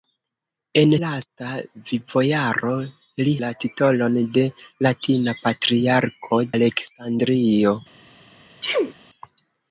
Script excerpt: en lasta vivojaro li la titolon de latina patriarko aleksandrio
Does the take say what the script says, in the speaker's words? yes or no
yes